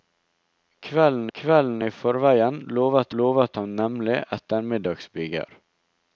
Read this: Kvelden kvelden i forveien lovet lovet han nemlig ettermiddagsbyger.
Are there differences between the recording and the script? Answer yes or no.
no